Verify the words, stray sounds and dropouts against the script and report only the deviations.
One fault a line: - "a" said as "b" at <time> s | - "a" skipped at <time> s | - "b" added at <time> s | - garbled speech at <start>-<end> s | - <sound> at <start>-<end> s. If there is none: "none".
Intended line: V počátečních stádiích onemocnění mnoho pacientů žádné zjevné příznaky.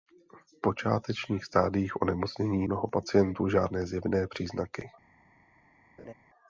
- laugh at 6.0-6.1 s